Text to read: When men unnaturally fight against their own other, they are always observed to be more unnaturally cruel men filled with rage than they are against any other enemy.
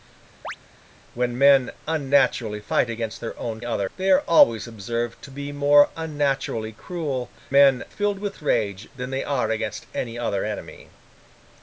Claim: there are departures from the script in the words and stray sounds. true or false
true